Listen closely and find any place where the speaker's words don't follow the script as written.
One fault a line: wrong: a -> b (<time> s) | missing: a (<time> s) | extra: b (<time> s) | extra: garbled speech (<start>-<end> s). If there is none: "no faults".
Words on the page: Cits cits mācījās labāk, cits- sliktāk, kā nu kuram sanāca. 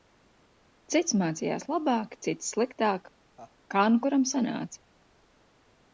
missing: cits (1.1 s)